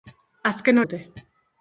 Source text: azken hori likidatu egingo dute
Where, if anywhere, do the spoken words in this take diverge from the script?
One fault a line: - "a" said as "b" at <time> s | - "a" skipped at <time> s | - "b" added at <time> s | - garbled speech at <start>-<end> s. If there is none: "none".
- "hori likidatu egingo" skipped at 0.8 s